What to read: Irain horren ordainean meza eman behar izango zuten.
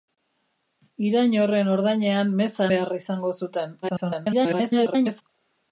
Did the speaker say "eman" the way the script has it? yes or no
no